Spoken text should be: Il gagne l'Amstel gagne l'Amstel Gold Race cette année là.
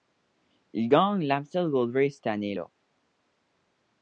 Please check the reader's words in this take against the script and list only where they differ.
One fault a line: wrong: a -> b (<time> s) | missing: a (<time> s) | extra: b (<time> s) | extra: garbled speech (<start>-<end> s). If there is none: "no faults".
missing: gagne l'Amstel (1.7 s)